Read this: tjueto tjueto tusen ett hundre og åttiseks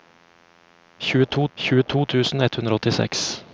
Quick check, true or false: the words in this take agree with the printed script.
true